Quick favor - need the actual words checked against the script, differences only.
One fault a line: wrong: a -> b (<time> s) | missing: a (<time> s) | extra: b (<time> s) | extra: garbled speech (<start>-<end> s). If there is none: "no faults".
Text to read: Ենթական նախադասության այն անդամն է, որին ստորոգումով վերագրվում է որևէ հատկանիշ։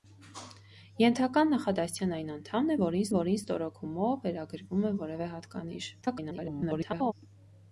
extra: որին (3.2 s)
extra: garbled speech (6.0-7.1 s)